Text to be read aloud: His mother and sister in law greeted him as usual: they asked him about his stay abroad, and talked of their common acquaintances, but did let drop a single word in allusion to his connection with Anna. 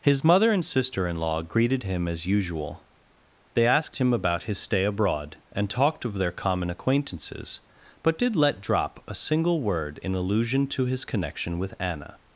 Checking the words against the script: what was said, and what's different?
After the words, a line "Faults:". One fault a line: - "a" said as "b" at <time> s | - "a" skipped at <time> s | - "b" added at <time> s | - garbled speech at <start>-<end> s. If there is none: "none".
His mother and sister in law greeted him as usual: they asked him about his stay abroad, and talked of their common acquaintances, but did let drop a single word in allusion to his connection with Anna.
Faults:
none